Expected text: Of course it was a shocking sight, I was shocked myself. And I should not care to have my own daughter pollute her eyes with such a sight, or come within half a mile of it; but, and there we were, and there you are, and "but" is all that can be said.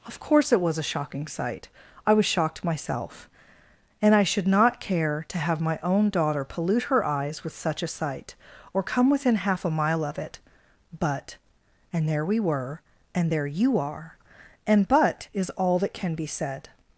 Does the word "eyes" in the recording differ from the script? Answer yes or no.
no